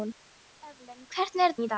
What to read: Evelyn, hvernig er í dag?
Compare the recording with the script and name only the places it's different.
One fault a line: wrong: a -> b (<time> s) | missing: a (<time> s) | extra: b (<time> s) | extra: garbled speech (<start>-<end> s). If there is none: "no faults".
no faults